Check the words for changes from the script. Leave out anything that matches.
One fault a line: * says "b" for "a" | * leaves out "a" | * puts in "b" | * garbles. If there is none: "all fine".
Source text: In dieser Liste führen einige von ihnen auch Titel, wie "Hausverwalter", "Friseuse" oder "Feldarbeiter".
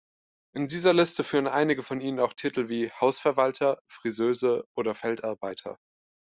all fine